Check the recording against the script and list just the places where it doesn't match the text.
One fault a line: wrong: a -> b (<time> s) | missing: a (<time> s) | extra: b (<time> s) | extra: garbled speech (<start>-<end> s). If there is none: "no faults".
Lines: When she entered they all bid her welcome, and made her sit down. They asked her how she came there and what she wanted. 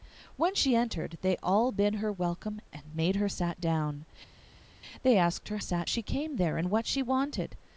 wrong: how -> sit (5.6 s)